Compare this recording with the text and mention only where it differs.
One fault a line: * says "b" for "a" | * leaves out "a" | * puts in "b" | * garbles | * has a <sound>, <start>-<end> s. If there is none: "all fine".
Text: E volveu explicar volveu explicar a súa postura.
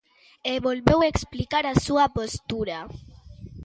* leaves out "volveu explicar"